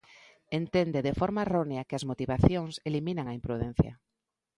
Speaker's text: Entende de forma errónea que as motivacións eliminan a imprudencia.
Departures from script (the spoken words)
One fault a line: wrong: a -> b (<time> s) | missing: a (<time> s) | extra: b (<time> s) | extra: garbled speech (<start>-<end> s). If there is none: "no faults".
no faults